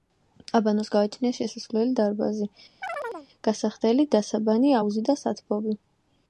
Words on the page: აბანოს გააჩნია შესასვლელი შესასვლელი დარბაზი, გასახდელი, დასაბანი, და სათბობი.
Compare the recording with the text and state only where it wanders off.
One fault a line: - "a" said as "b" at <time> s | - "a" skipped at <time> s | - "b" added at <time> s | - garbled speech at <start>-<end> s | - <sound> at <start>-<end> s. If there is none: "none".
- "შესასვლელი" skipped at 1.9 s
- chirp at 2.8-3.3 s
- "აუზი" added at 4.8 s